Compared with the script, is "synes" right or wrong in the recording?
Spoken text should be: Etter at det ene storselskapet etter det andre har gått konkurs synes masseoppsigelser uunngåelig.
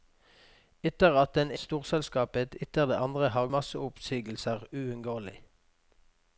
wrong